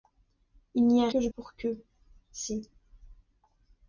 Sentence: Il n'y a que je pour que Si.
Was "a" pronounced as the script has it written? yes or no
yes